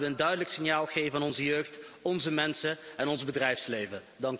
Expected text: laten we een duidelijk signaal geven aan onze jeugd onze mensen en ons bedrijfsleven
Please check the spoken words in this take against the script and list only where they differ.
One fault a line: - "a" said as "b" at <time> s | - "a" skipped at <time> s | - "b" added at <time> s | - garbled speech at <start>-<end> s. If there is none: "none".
none